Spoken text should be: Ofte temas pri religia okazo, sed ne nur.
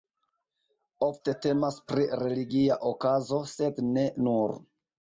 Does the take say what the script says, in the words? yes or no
yes